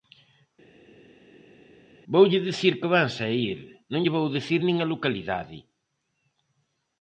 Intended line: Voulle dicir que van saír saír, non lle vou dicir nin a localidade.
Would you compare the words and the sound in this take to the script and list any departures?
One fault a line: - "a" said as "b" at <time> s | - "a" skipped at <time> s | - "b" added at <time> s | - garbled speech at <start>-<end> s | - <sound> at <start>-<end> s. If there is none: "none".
- "saír" skipped at 3.6 s